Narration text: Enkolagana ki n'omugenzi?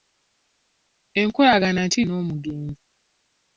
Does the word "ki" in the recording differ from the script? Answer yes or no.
no